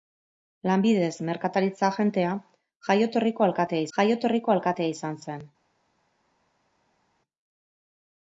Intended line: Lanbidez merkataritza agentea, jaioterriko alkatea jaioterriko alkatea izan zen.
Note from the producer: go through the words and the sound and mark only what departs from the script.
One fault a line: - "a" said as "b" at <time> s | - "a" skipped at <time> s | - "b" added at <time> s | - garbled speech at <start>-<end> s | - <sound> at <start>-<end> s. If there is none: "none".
none